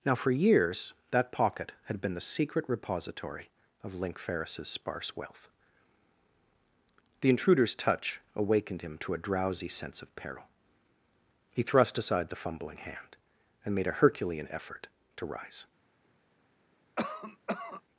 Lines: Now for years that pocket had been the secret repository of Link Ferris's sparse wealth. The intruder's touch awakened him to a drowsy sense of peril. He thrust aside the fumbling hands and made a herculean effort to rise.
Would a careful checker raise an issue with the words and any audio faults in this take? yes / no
yes